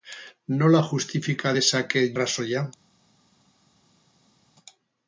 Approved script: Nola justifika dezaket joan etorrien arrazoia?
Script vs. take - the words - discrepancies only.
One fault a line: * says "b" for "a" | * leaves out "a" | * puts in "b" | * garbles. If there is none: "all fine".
* leaves out "joan etorrien"